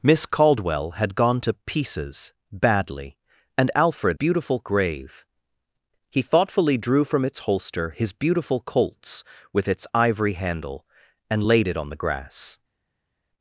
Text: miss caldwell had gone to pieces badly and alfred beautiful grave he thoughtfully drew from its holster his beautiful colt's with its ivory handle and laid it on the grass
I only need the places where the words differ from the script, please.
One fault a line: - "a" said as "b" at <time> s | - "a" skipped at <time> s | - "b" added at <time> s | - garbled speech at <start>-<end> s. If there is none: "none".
none